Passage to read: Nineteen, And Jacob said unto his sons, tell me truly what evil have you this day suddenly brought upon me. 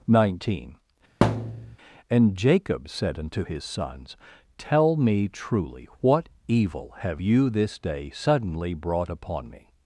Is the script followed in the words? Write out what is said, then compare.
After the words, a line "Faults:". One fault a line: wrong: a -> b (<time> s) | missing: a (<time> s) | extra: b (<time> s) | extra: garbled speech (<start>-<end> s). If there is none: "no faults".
Nineteen, And Jacob said unto his sons, tell me truly what evil have you this day suddenly brought upon me.
Faults:
no faults